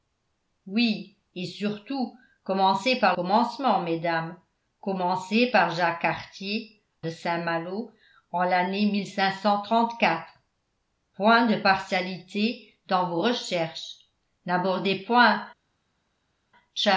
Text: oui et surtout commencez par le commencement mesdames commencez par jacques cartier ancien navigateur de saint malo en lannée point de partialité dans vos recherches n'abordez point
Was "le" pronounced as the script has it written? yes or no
no